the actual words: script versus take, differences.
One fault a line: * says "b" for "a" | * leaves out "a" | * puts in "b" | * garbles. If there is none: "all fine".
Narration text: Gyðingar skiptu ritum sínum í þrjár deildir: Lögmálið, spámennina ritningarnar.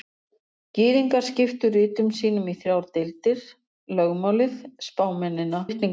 all fine